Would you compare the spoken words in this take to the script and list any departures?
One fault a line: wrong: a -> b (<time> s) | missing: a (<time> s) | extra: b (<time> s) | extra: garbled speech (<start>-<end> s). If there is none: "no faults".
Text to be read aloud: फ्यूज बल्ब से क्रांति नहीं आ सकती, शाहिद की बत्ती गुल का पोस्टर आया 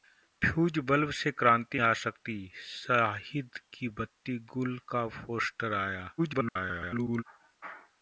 missing: नहीं (1.8 s)
extra: garbled speech (6.2-7.2 s)